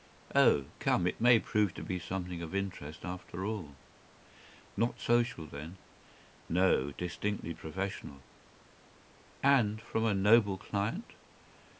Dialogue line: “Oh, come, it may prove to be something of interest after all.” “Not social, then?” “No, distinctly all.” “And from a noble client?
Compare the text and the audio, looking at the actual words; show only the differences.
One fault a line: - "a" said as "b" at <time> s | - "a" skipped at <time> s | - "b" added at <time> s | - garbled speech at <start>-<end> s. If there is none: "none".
- "all" said as "professional" at 7.5 s